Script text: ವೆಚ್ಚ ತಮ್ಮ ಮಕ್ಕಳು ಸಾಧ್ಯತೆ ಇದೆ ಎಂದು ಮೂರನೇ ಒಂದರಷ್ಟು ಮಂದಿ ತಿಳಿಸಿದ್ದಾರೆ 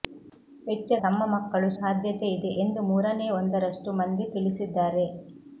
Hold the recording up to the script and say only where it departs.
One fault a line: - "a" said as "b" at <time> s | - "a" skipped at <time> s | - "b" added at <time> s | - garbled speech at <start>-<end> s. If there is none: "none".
none